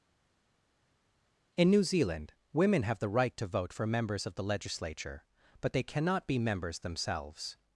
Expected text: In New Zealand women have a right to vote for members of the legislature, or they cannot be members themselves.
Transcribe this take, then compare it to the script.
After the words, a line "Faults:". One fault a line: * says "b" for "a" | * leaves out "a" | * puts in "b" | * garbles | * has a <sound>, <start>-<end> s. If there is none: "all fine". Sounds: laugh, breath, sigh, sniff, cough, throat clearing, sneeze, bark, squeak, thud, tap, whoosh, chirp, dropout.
In New Zealand women have the right to vote for members of the legislature, but they cannot be members themselves.
Faults:
* says "the" for "a"
* says "but" for "or"